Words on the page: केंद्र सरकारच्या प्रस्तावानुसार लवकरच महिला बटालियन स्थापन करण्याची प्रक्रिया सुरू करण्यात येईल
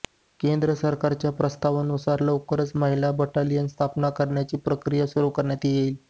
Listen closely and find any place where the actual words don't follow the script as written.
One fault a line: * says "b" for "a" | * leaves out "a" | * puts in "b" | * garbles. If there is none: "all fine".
all fine